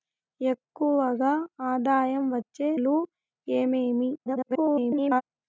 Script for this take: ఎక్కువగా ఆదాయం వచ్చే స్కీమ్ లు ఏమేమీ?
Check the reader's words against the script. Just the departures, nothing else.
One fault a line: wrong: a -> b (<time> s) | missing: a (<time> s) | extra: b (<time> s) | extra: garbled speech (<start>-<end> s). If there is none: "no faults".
missing: స్కీమ్ (2.7 s)
extra: garbled speech (4.2-5.2 s)